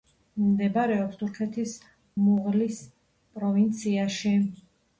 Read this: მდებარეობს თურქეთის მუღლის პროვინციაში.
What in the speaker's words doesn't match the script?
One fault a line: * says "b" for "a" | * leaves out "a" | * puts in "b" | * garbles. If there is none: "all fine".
all fine